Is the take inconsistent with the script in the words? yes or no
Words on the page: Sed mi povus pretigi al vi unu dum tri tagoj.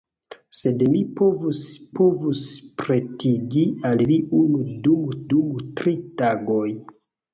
yes